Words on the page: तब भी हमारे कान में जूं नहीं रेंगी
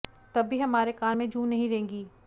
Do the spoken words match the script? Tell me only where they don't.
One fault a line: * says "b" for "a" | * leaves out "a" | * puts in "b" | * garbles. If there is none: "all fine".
all fine